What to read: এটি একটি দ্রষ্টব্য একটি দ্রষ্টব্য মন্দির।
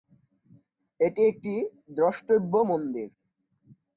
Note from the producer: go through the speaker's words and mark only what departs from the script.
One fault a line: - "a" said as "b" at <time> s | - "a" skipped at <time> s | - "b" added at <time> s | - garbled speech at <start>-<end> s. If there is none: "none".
- "একটি দ্রষ্টব্য" skipped at 2.5 s